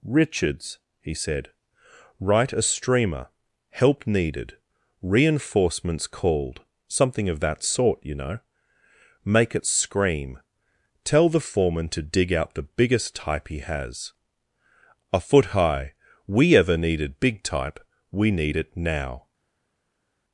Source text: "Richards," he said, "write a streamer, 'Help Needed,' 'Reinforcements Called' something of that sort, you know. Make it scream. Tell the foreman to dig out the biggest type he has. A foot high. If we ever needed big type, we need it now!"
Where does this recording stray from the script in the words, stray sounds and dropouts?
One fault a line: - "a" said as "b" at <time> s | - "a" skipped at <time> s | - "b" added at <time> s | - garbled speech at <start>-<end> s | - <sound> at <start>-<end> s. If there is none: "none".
- "If" skipped at 15.9 s